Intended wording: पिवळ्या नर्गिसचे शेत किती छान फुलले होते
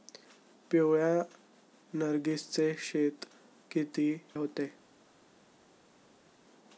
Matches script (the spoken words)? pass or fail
fail